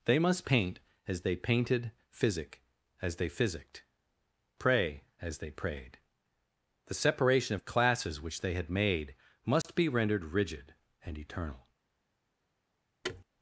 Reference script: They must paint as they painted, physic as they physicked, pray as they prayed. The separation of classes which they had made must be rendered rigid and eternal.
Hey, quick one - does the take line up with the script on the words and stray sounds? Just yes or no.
no